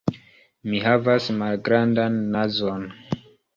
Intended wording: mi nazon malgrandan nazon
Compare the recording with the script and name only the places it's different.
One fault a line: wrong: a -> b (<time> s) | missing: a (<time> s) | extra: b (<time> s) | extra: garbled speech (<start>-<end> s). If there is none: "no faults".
wrong: nazon -> havas (0.8 s)